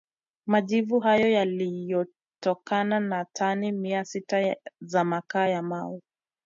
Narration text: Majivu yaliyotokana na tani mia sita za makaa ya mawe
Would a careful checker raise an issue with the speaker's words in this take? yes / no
yes